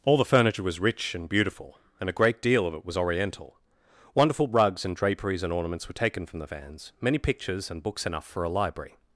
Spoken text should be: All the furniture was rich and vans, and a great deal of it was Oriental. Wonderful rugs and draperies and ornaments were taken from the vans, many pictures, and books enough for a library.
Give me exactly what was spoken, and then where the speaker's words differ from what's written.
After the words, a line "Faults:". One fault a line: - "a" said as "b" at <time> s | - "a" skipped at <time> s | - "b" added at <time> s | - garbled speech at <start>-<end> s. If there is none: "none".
All the furniture was rich and beautiful, and a great deal of it was Oriental. Wonderful rugs and draperies and ornaments were taken from the vans, many pictures, and books enough for a library.
Faults:
- "vans" said as "beautiful" at 1.3 s